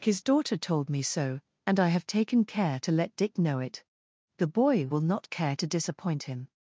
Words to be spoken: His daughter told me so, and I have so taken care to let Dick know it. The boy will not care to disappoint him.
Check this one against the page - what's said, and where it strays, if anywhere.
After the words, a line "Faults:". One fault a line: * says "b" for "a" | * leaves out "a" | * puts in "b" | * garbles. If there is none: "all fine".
His daughter told me so, and I have taken care to let Dick know it. The boy will not care to disappoint him.
Faults:
* leaves out "so"